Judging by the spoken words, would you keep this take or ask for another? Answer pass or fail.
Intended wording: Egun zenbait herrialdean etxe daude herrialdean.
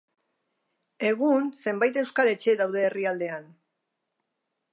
fail